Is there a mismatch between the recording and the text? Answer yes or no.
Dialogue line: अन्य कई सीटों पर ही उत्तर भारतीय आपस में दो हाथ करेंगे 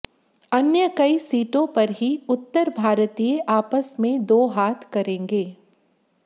no